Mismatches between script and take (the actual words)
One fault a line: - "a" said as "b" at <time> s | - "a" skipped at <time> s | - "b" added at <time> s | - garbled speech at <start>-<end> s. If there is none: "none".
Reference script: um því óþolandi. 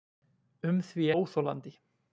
none